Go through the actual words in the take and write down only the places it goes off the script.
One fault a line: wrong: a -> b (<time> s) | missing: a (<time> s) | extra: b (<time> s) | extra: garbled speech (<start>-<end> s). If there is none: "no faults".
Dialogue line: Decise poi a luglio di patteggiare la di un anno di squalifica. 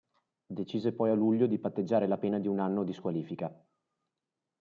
extra: pena (2.2 s)